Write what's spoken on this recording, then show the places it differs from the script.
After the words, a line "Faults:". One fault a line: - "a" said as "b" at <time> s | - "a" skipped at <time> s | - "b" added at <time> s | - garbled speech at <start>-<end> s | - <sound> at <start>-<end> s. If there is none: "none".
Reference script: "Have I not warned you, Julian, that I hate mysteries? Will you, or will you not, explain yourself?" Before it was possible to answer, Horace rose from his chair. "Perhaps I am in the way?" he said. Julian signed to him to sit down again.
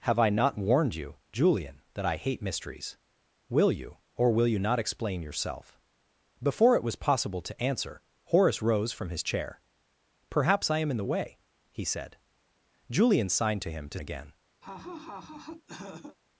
"Have I not warned you, Julian, that I hate mysteries? Will you, or will you not, explain yourself?" Before it was possible to answer, Horace rose from his chair. "Perhaps I am in the way?" he said. Julian signed to him to again.
Faults:
- "sit down" skipped at 14.0 s
- laugh at 14.6-16.2 s